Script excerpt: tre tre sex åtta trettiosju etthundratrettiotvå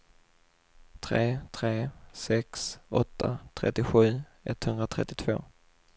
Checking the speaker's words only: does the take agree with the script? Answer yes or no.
yes